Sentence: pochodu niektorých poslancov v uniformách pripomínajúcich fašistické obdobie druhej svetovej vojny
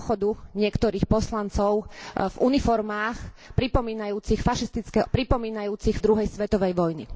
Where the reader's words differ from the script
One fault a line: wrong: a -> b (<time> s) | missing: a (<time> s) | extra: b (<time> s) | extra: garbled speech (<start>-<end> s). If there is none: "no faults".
wrong: obdobie -> pripomínajúcich (5.1 s)